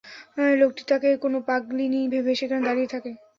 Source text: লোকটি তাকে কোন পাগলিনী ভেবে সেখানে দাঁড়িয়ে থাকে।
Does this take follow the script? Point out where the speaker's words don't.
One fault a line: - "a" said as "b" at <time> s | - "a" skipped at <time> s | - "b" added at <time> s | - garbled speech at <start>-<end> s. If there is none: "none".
none